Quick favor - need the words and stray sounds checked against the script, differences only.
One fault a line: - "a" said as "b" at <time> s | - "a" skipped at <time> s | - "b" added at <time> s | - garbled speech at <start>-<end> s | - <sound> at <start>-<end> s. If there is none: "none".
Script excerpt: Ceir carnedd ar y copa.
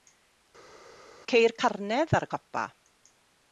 none